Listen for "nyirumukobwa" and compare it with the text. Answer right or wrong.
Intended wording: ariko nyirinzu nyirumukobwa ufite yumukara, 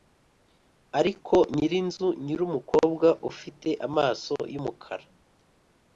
right